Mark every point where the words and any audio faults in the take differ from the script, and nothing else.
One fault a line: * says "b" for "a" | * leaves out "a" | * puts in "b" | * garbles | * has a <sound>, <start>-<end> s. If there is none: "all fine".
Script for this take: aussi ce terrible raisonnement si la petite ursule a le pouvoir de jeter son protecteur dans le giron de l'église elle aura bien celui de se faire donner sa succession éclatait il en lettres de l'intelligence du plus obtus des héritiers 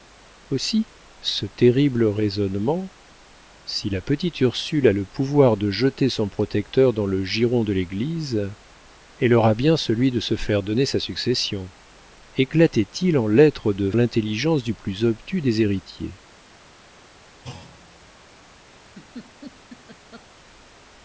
* has a thud, 17.4-18.1 s
* has a laugh, 18.8-20.3 s